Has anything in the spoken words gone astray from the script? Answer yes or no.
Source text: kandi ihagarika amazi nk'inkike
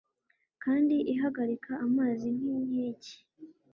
no